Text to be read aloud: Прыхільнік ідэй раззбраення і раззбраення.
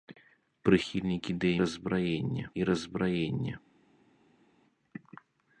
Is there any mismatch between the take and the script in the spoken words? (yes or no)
no